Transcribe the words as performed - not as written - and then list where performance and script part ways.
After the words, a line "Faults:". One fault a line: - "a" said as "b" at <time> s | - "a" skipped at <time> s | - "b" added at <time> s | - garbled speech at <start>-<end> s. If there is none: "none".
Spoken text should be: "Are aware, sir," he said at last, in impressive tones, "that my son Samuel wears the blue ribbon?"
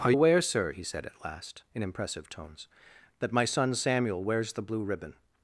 "Are aware, sir," he said at last, in impressive tones, "that my son Samuel wears the blue ribbon?"
Faults:
none